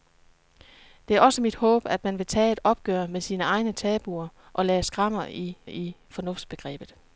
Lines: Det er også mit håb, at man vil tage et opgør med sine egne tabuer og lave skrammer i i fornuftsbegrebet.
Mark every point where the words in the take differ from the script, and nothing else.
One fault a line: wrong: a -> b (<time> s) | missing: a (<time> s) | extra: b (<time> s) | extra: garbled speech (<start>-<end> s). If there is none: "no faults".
no faults